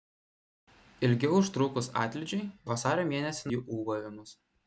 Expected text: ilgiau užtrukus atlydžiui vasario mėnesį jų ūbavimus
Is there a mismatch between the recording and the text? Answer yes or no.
no